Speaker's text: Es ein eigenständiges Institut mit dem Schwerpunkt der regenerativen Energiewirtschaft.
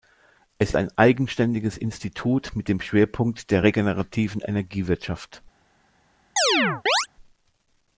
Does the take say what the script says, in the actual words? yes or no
yes